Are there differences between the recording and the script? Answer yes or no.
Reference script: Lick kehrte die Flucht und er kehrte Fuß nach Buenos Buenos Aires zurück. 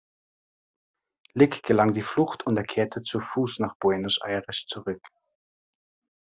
yes